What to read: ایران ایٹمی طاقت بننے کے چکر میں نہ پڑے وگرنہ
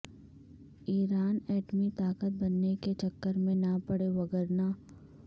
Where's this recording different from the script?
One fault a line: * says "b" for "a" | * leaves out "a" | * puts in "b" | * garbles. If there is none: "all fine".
all fine